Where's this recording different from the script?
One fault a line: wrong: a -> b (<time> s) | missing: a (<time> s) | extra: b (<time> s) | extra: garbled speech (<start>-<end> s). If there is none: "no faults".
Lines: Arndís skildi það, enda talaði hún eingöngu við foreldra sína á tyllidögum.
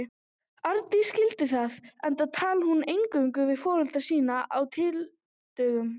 no faults